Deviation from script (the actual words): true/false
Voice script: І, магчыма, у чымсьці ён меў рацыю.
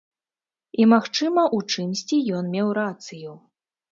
false